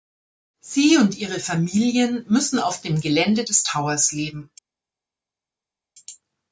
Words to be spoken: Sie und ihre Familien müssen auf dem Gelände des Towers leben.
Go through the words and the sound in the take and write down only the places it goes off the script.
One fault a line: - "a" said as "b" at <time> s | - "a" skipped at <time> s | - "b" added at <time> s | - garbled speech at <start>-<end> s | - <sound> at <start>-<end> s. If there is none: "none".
none